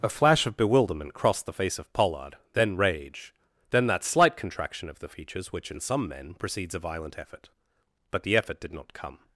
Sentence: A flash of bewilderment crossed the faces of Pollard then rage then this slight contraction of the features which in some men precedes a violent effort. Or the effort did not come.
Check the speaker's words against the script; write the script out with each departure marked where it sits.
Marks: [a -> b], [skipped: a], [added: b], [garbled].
A flash of bewilderment crossed the [faces -> face] of Pollard then rage then [this -> that] slight contraction of the features which in some men precedes a violent effort. [Or -> But] the effort did not come.